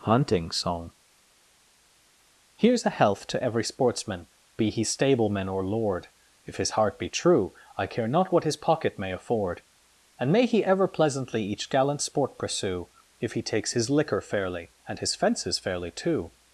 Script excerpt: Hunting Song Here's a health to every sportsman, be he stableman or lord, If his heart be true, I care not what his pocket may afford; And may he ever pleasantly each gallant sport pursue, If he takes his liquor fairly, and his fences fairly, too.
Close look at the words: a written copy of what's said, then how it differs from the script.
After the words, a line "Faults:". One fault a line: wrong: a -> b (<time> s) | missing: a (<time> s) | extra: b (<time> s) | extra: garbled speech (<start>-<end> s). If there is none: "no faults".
Hunting Song Here's a health to every sportsman, be he stableman or lord, If his heart be true, I care not what his pocket may afford; And may he ever pleasantly each gallant sport pursue, If he takes his liquor fairly, and his fences fairly, too.
Faults:
no faults